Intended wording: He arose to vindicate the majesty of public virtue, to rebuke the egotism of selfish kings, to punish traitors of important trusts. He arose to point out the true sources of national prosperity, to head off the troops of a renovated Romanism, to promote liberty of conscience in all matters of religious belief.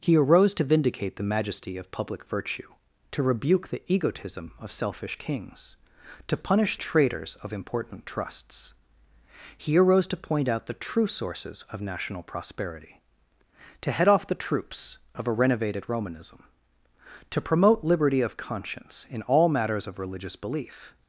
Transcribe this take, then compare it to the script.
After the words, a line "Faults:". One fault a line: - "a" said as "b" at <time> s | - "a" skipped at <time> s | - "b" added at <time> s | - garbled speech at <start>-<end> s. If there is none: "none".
He arose to vindicate the majesty of public virtue, to rebuke the egotism of selfish kings, to punish traitors of important trusts. He arose to point out the true sources of national prosperity, to head off the troops of a renovated Romanism, to promote liberty of conscience in all matters of religious belief.
Faults:
none